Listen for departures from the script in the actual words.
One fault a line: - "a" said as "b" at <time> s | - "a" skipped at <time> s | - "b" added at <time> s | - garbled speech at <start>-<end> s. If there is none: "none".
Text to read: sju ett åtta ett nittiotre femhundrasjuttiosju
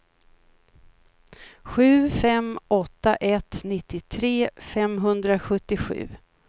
- "ett" said as "fem" at 2.1 s